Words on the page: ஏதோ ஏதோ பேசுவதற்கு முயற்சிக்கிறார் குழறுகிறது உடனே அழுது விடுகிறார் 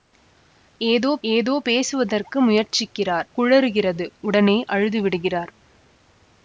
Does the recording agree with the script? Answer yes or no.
yes